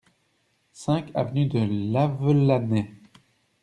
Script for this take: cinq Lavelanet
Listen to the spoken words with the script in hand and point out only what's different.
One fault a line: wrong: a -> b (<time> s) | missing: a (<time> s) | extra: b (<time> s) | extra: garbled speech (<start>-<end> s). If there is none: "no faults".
extra: avenue de (1.1 s)